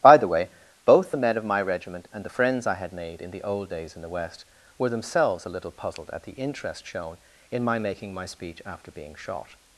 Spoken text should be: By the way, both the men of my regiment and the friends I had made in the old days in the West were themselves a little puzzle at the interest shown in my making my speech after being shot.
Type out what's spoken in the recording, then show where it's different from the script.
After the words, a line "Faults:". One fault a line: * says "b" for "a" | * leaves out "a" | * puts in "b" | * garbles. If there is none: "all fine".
By the way, both the men of my regiment and the friends I had made in the old days in the West were themselves a little puzzled at the interest shown in my making my speech after being shot.
Faults:
* says "puzzled" for "puzzle"